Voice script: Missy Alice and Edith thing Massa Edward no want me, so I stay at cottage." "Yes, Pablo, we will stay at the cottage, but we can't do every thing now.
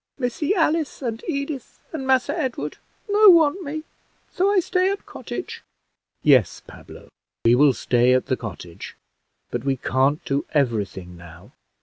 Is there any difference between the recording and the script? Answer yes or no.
yes